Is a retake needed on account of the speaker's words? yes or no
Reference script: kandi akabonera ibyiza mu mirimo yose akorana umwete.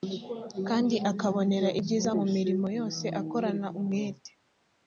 no